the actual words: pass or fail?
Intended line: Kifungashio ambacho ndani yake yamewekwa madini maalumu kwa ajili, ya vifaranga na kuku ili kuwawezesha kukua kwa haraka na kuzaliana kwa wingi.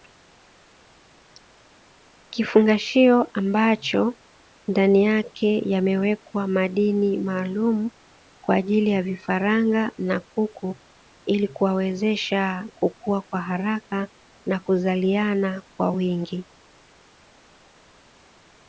pass